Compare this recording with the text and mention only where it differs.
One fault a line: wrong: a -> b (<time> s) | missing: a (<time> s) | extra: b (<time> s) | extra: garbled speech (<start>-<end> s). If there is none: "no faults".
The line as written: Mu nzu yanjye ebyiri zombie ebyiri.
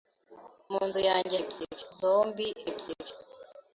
no faults